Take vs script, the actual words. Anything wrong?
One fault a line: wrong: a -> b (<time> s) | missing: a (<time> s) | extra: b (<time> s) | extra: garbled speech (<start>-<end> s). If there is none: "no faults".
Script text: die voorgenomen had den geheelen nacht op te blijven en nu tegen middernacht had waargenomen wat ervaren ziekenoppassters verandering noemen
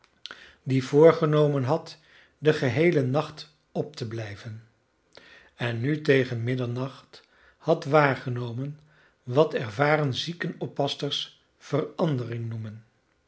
no faults